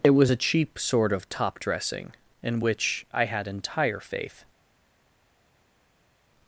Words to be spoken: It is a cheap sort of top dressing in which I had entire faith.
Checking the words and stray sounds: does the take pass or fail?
fail